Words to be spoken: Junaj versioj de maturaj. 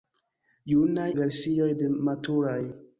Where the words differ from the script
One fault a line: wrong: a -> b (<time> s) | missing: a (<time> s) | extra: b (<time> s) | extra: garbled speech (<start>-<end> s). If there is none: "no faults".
no faults